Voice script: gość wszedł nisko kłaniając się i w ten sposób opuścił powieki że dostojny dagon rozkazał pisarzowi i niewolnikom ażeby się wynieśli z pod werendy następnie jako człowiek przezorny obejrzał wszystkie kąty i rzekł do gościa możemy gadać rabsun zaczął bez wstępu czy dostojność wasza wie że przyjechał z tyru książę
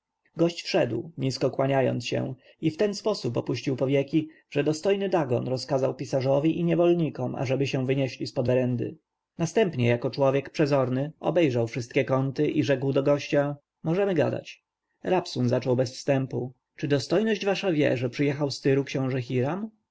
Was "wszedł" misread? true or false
false